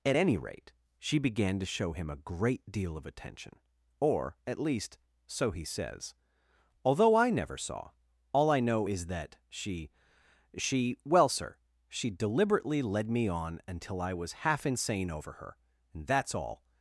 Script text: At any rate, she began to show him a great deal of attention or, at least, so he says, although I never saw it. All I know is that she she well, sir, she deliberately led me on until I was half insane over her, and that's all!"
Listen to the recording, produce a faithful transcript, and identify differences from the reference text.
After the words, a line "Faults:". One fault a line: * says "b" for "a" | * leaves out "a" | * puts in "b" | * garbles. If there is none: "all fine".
At any rate, she began to show him a great deal of attention or, at least, so he says, although I never saw. All I know is that she she well, sir, she deliberately led me on until I was half insane over her, and that's all!"
Faults:
* leaves out "it"